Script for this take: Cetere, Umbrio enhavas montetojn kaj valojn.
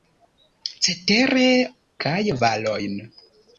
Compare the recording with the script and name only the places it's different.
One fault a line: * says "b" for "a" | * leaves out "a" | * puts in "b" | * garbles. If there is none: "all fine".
* leaves out "Umbrio enhavas montetojn"